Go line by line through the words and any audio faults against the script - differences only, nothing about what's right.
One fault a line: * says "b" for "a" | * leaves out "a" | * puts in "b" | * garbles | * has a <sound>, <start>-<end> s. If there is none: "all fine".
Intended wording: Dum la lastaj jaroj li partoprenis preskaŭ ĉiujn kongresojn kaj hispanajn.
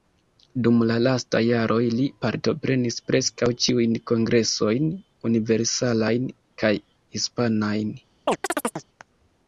* puts in "universalajn"
* has a chirp, 8.3-8.9 s